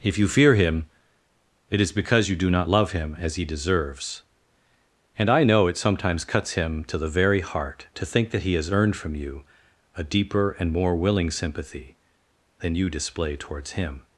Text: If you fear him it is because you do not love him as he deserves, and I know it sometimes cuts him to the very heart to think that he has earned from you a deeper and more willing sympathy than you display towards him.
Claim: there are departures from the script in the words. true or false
false